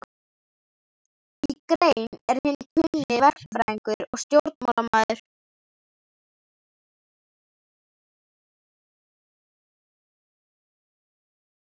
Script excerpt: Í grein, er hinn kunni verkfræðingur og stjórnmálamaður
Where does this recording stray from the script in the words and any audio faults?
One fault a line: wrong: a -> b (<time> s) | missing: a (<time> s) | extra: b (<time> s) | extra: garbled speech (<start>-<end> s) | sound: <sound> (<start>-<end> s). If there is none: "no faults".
no faults